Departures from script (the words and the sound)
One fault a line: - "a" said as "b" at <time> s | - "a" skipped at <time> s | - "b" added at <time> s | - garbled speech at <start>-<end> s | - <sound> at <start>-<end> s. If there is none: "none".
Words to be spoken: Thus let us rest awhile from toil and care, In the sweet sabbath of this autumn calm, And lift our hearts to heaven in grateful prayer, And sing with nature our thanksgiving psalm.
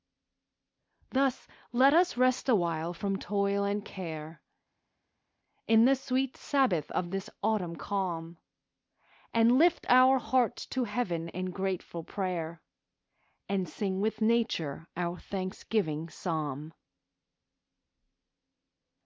none